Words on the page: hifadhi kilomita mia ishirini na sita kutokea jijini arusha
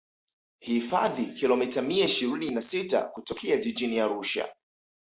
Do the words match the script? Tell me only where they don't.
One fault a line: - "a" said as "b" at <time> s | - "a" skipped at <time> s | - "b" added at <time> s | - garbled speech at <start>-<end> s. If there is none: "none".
none